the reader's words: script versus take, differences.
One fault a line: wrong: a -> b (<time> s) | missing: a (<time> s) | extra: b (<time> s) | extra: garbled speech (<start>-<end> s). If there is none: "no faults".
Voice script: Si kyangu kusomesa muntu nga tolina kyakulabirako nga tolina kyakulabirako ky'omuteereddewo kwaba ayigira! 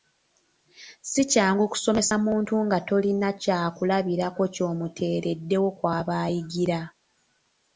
missing: nga tolina kyakulabirako (4.4 s)